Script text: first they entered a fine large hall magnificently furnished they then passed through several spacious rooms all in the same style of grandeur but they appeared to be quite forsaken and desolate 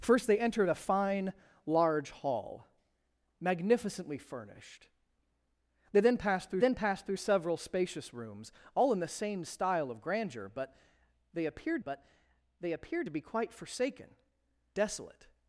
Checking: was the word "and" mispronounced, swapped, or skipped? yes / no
yes